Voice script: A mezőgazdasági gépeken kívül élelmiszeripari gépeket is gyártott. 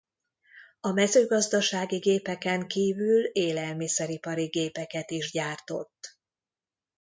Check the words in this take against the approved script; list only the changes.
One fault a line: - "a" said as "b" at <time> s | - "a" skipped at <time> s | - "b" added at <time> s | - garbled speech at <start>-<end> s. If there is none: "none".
none